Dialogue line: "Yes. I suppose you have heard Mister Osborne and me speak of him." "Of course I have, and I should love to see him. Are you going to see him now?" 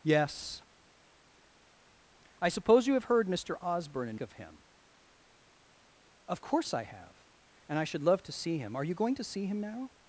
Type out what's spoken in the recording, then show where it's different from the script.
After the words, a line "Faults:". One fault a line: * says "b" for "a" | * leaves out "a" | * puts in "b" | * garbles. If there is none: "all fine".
"Yes. I suppose you have heard Mister Osborne and of him." "Of course I have, and I should love to see him. Are you going to see him now?"
Faults:
* leaves out "me speak"